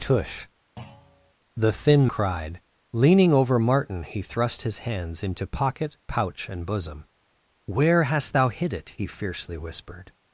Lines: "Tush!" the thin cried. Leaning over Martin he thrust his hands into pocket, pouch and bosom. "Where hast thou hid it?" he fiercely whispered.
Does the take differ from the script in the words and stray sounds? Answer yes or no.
yes